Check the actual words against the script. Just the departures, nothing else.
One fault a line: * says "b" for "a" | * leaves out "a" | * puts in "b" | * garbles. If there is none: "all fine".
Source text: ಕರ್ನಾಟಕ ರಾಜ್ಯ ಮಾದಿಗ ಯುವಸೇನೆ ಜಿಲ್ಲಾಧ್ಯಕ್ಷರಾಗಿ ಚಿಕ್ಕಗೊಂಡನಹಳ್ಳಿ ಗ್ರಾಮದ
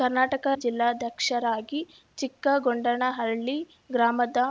* leaves out "ರಾಜ್ಯ ಮಾದಿಗ ಯುವಸೇನೆ"